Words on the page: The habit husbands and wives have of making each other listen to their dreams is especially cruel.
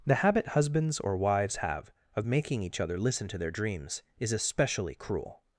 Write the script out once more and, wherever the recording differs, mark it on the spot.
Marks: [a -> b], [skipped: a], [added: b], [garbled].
The habit husbands [and -> or] wives have of making each other listen to their dreams is especially cruel.